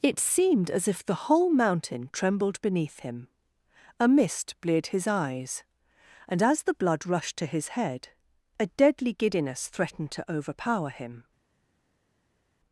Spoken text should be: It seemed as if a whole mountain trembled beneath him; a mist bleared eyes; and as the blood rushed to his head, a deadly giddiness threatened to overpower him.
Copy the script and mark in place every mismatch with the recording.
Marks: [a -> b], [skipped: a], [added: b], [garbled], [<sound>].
It seemed as if [a -> the] whole mountain trembled beneath him; a mist bleared [added: his] eyes; and as the blood rushed to his head, a deadly giddiness threatened to overpower him.